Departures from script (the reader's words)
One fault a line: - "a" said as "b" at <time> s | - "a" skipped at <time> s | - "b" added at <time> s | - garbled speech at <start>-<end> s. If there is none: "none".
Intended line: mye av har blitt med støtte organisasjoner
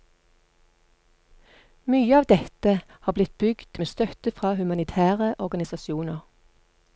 - "dette" added at 2.3 s
- "bygd" added at 3.4 s
- "fra humanitære" added at 4.3 s